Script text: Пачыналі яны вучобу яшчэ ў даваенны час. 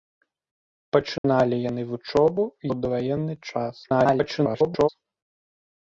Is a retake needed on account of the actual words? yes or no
yes